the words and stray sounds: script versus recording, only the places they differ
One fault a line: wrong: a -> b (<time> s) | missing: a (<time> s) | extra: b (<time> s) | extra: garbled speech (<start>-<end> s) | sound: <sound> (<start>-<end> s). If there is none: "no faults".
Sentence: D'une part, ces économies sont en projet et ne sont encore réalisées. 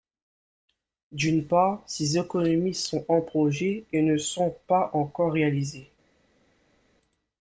extra: pas (4.7 s)